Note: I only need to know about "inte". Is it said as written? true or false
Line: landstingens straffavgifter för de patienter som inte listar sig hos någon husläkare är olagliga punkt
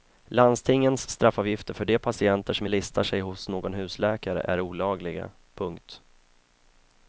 false